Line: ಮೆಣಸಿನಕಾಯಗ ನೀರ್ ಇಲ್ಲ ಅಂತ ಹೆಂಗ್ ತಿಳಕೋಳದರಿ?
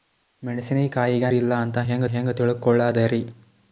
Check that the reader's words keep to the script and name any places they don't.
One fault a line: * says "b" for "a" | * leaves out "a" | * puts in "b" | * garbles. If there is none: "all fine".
* leaves out "ನೀರ್"
* puts in "ಹೆಂಗ್"